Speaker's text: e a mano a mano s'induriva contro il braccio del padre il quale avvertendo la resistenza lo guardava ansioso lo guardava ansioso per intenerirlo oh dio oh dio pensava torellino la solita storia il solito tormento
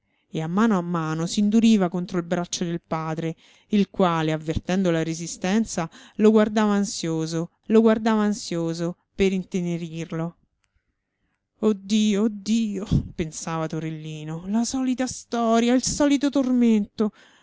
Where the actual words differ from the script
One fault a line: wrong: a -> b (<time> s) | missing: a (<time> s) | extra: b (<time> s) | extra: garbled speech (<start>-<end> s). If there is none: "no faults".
no faults